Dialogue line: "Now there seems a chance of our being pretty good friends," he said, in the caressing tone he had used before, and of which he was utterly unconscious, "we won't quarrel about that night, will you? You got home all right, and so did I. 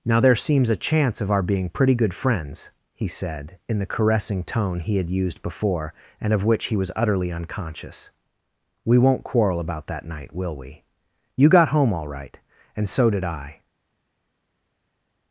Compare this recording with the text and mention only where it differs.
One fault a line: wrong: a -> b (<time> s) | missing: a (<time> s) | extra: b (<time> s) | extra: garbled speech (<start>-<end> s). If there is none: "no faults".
wrong: you -> we (10.6 s)